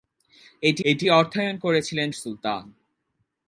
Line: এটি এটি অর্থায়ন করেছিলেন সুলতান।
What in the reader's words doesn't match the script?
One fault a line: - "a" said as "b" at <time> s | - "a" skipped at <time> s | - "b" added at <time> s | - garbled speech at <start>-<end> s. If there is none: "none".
none